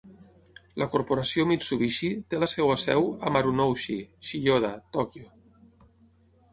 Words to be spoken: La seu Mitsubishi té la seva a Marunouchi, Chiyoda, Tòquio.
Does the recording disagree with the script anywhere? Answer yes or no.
yes